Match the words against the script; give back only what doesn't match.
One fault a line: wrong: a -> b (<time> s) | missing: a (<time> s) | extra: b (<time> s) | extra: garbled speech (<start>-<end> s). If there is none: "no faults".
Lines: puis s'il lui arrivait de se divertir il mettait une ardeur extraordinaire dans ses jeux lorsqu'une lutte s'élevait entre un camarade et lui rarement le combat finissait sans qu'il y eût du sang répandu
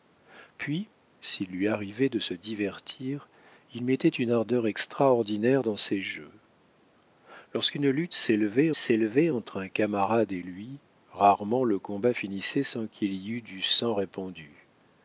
extra: s'élevait (8.8 s)